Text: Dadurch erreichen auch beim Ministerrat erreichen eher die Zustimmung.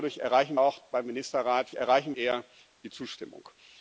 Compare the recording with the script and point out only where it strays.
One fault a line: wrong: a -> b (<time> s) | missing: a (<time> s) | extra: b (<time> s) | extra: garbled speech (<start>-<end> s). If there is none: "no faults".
no faults